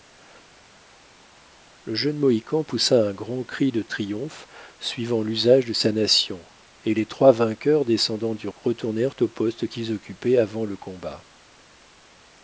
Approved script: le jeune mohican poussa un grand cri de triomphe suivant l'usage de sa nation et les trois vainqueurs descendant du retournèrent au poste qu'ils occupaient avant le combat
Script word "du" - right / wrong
right